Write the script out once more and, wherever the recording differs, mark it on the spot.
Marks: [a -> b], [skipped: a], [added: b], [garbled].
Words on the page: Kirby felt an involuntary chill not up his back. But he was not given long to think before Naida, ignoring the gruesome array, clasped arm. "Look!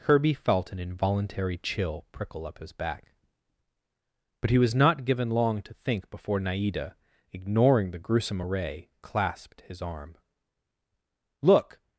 Kirby felt an involuntary chill [not -> prickle] up his back. But he was not given long to think before Naida, ignoring the gruesome array, clasped [added: his] arm. "Look!